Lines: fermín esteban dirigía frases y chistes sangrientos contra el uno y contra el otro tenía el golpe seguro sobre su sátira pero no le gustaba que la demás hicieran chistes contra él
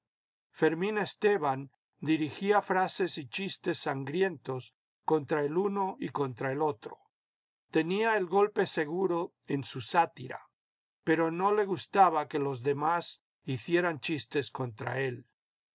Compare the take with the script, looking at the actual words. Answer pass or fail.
fail